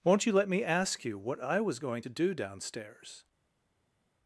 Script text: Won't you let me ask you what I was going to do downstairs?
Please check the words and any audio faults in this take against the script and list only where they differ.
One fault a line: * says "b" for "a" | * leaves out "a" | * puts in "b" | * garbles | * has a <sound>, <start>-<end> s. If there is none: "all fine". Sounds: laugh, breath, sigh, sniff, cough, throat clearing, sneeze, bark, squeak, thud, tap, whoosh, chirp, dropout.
all fine